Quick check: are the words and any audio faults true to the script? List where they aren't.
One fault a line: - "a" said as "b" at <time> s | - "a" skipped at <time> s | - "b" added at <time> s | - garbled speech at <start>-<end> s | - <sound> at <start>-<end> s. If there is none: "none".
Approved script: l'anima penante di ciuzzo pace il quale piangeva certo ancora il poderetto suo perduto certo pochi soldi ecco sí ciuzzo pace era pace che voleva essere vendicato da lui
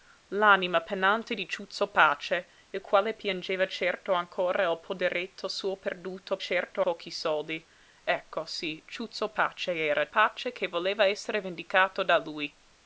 none